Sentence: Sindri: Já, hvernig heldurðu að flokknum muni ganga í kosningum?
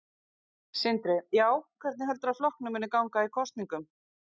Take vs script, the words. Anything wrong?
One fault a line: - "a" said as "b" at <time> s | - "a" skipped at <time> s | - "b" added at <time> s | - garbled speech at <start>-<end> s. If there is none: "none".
none